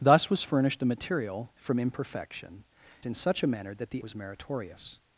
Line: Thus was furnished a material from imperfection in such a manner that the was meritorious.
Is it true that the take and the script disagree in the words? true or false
false